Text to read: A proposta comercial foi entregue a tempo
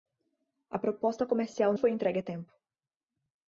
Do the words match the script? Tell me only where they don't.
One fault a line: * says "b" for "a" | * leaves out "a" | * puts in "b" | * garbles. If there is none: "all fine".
all fine